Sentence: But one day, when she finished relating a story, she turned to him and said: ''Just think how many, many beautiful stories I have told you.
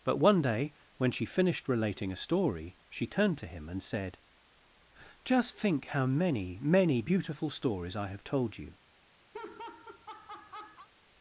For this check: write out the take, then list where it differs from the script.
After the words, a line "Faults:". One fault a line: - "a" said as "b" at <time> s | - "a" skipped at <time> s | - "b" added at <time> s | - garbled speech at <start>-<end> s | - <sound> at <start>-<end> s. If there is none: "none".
But one day, when she finished relating a story, she turned to him and said: ''Just think how many, many beautiful stories I have told you.
Faults:
- laugh at 9.3-10.9 s